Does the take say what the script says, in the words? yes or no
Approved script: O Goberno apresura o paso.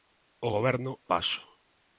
no